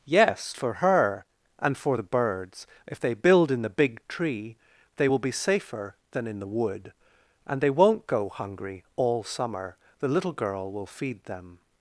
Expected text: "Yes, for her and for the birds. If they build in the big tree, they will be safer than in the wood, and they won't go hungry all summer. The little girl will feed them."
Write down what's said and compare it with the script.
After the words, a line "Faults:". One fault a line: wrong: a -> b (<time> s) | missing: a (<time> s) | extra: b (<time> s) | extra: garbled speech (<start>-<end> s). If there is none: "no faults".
"Yes, for her and for the birds. If they build in the big tree, they will be safer than in the wood, and they won't go hungry all summer. The little girl will feed them."
Faults:
no faults